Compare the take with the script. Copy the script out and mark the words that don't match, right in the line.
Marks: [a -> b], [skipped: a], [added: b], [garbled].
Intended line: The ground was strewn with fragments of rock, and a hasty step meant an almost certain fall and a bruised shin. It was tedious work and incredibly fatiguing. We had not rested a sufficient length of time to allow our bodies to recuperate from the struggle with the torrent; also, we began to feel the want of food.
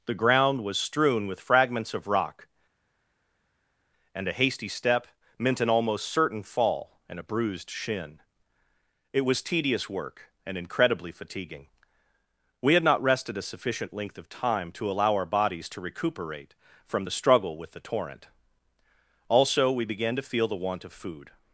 The ground was strewn with fragments of rock, and a hasty step meant an almost certain fall and a bruised shin. It was tedious work and incredibly fatiguing. We had not rested a sufficient length of time to allow our bodies to recuperate from the struggle with the torrent; also, we began to feel the want of food.